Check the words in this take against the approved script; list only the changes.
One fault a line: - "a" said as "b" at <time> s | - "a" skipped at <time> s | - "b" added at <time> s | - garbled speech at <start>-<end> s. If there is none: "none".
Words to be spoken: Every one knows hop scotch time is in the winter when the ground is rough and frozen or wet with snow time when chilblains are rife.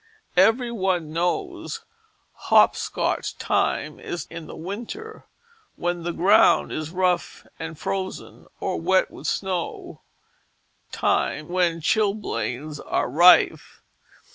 none